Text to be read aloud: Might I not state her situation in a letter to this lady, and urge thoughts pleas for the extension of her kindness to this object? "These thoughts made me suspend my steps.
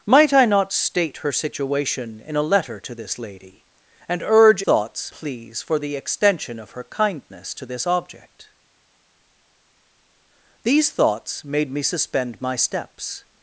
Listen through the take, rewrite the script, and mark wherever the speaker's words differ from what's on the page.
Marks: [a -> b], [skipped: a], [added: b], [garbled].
Might I not state her situation in a letter to this lady, and urge thoughts pleas for the extension of her kindness to this object? "These thoughts made me suspend my steps.